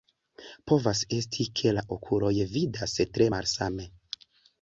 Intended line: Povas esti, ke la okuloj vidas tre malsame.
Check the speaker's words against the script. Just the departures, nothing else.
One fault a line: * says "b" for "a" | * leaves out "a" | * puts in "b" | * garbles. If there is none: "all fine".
all fine